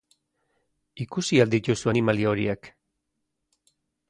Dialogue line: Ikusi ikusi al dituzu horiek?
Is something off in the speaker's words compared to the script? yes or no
yes